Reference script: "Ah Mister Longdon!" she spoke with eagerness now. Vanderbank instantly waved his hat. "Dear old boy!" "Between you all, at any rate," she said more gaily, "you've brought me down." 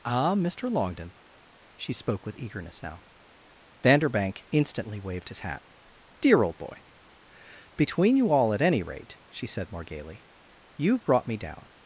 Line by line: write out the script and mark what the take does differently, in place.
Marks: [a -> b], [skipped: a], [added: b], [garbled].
"Ah Mister Longdon!" she spoke with eagerness now. Vanderbank instantly waved his hat. "Dear old boy!" "Between you all, at any rate," she said more gaily, "you've brought me down."